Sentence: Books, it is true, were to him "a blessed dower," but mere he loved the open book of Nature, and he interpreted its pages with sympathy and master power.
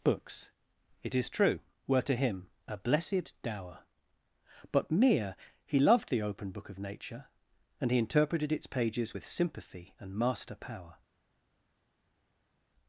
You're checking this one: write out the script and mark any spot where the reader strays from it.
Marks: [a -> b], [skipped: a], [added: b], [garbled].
Books, it is true, were to him "a blessed dower," but mere he loved the open book of Nature, and he interpreted its pages with sympathy and master power.